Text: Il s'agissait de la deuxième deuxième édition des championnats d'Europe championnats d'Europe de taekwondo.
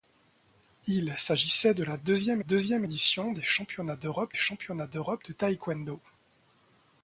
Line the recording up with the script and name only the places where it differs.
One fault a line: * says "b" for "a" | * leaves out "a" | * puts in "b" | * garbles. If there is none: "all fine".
all fine